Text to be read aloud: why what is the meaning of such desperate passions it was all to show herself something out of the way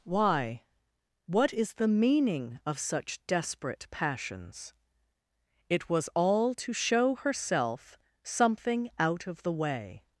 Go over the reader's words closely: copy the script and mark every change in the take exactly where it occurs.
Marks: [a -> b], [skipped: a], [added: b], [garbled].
why what is the meaning of such desperate passions it was all to show herself something out of the way